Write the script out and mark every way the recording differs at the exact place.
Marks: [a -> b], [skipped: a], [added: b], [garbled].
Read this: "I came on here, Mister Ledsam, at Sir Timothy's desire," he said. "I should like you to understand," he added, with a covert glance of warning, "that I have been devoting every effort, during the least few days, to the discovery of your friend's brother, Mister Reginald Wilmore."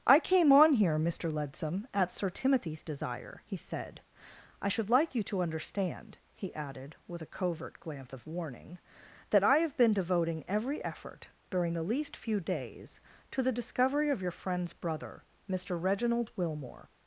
"I came on here, Mister Ledsam, at Sir Timothy's desire," he said. "I should like you to understand," he added, with a covert glance of warning, "that I have been devoting every effort, during the least few days, to the discovery of your friend's brother, Mister Reginald Wilmore."